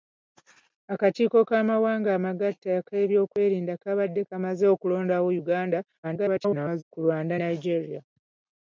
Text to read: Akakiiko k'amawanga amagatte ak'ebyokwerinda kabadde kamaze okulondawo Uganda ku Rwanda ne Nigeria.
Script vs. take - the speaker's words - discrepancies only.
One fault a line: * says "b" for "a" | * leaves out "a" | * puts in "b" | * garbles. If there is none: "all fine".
* garbles
* leaves out "ne"